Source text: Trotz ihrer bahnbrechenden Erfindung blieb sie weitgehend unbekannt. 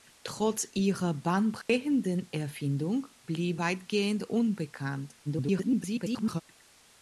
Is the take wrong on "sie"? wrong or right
wrong